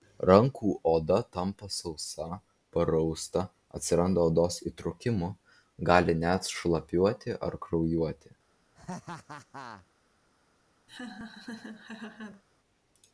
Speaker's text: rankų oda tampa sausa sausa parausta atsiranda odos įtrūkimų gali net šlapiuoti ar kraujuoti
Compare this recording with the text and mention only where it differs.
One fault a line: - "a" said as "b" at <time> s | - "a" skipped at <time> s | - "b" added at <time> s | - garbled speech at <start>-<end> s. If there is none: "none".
- "sausa" skipped at 2.2 s